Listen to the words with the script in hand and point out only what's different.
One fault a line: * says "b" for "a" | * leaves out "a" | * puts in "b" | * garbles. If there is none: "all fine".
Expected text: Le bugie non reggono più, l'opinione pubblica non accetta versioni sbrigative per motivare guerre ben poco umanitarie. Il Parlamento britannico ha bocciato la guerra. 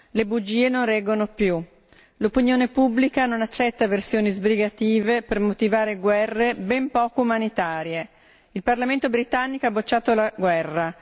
all fine